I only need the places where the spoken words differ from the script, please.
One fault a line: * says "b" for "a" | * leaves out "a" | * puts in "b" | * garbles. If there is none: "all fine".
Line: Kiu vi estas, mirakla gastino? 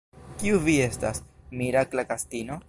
all fine